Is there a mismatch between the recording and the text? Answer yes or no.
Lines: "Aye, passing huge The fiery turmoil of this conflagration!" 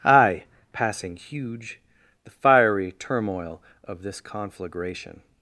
no